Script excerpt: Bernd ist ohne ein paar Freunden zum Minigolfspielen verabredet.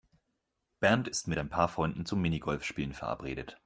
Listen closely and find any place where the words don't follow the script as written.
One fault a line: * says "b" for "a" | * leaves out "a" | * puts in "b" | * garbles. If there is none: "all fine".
* says "mit" for "ohne"